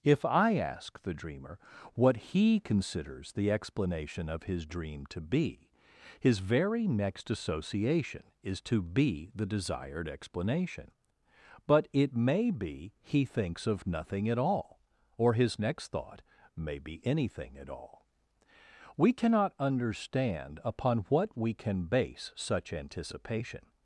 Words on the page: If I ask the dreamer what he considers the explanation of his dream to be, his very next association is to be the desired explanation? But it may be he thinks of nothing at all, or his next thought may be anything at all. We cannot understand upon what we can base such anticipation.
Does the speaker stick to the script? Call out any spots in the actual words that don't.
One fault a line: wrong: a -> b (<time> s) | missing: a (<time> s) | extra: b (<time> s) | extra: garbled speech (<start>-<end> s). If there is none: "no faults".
no faults